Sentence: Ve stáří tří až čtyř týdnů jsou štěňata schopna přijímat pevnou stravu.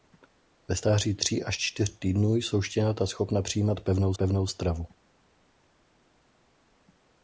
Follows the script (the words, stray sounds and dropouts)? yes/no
no